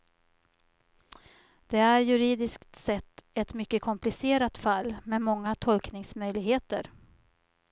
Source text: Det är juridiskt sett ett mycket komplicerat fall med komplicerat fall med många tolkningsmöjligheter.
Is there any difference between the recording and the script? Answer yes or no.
yes